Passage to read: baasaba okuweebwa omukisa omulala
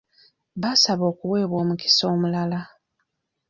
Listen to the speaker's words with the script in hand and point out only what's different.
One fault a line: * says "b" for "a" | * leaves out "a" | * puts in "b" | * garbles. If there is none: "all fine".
all fine